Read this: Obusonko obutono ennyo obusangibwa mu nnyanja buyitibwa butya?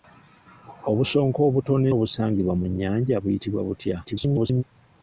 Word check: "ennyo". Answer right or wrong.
wrong